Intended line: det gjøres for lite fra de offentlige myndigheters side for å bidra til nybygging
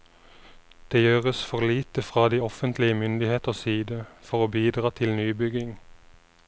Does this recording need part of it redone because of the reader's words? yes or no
no